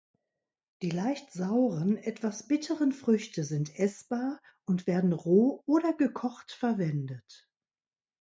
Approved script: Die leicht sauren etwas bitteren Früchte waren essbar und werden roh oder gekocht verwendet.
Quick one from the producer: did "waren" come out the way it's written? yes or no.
no